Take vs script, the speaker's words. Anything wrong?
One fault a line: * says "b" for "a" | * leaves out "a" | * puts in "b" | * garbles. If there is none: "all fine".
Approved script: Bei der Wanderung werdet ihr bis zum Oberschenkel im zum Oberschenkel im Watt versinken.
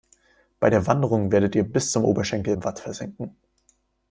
* leaves out "zum Oberschenkel im"